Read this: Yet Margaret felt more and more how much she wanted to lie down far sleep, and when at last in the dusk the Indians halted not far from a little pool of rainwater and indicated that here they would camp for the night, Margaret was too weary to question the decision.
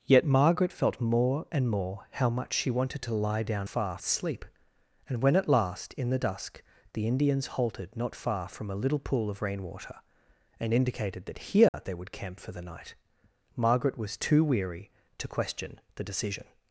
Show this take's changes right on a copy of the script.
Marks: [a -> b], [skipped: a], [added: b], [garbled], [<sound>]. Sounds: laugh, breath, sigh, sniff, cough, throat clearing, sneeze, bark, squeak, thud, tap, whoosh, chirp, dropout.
Yet Margaret felt more and more how much she wanted to lie down far sleep, and when at last in the dusk the Indians halted not far from a little pool of rainwater and indicated that here [dropout] they would camp for the night, Margaret was too weary to question the decision.